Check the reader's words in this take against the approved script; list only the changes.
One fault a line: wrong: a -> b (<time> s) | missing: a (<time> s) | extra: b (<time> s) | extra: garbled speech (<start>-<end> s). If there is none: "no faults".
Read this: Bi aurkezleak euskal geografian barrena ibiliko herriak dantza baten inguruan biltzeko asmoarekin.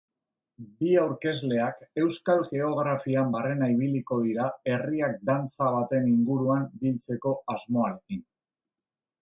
extra: dira (4.3 s)